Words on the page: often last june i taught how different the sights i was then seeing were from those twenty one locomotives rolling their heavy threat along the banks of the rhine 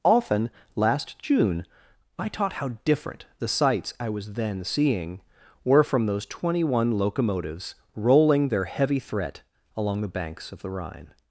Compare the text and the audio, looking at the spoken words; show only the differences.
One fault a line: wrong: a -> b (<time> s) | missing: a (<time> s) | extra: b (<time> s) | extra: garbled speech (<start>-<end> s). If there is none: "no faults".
no faults